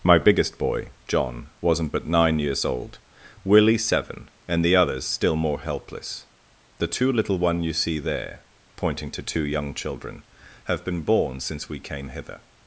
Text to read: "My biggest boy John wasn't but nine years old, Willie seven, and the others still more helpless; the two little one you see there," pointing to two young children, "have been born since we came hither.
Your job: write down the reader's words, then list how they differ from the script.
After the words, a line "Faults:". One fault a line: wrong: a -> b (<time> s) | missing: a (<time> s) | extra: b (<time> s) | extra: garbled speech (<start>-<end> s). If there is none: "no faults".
"My biggest boy John wasn't but nine years old, Willie seven, and the others still more helpless; the two little one you see there," pointing to two young children, "have been born since we came hither.
Faults:
no faults